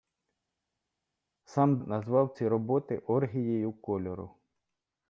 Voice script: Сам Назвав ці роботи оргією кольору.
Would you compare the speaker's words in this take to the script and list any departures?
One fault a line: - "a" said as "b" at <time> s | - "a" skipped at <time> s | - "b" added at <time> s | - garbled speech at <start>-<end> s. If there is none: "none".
none